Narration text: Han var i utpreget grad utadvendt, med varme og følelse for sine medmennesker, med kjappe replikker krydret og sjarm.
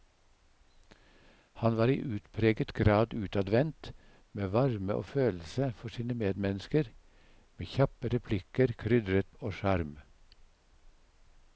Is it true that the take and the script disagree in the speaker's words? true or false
false